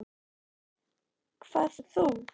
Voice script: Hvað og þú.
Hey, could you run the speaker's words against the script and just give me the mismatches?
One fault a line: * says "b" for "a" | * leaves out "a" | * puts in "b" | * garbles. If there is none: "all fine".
all fine